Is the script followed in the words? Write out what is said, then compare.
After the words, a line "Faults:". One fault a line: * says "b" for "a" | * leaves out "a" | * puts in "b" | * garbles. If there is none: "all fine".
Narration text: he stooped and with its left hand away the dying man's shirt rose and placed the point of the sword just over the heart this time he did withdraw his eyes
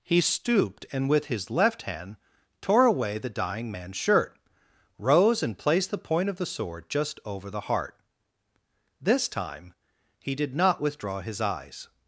he stooped and with his left hand tore away the dying man's shirt rose and placed the point of the sword just over the heart this time he did not withdraw his eyes
Faults:
* says "his" for "its"
* puts in "tore"
* puts in "not"